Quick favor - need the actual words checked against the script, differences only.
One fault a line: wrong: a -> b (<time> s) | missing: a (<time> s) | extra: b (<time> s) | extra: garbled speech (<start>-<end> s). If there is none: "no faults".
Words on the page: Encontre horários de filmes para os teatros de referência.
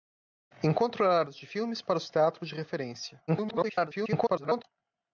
extra: garbled speech (3.3-4.6 s)